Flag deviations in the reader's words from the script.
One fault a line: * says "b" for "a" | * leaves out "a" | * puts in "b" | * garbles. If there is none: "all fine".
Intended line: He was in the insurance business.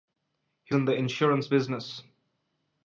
* leaves out "was"